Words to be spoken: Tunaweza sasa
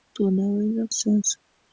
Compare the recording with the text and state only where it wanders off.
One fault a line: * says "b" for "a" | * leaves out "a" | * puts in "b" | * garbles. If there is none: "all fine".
all fine